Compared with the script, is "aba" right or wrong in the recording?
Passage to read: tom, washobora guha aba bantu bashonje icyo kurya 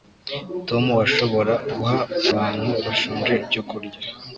wrong